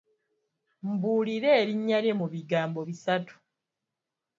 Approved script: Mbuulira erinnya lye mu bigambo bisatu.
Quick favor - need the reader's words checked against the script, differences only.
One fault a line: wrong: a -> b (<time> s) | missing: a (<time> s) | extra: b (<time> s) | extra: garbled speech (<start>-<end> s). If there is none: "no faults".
no faults